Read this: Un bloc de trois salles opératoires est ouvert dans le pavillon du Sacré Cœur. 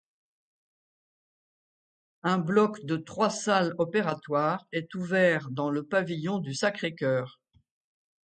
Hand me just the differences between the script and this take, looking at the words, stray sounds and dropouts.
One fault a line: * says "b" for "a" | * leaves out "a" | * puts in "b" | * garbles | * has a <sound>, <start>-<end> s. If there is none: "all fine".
all fine